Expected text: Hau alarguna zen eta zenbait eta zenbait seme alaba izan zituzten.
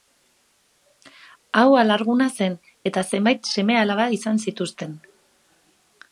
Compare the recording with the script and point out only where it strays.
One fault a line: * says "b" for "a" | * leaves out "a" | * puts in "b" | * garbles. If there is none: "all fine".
* leaves out "eta zenbait"